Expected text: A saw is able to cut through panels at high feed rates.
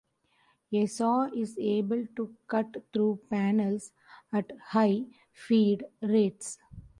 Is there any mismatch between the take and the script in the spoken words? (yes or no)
no